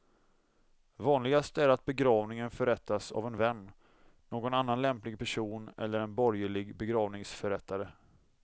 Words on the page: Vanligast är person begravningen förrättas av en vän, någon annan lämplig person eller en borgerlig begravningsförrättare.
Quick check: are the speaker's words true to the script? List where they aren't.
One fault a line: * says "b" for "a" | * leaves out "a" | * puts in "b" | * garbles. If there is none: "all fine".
* says "att" for "person"